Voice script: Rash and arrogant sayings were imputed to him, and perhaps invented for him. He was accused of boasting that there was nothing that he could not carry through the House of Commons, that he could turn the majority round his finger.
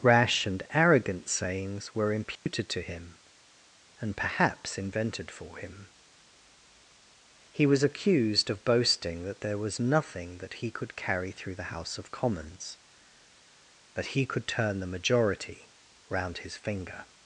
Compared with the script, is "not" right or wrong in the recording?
wrong